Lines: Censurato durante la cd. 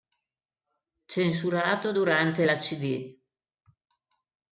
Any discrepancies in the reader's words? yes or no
no